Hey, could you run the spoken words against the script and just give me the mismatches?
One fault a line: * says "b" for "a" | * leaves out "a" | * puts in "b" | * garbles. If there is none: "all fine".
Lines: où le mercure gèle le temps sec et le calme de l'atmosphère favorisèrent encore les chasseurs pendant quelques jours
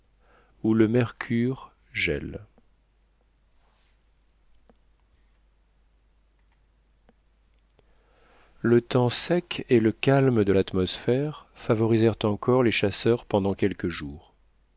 all fine